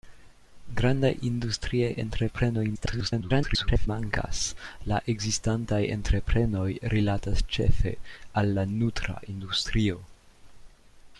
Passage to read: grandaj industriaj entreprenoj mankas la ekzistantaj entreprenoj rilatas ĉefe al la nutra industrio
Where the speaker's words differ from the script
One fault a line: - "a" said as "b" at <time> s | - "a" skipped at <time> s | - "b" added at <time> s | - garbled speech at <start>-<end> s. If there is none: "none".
- garbled speech at 2.7-3.9 s